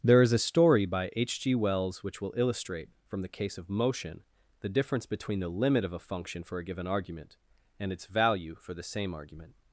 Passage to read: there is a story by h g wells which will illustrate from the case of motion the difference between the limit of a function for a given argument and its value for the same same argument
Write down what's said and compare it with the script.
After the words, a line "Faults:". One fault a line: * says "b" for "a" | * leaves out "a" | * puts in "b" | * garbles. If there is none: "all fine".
there is a story by h g wells which will illustrate from the case of motion the difference between the limit of a function for a given argument and its value for the same argument
Faults:
* leaves out "same"